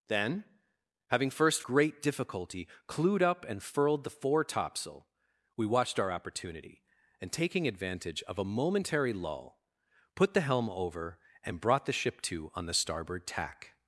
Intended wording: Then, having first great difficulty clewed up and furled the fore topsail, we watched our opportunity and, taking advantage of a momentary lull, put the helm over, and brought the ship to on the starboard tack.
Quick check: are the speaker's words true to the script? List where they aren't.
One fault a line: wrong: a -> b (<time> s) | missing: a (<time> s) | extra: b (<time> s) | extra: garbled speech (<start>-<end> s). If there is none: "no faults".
no faults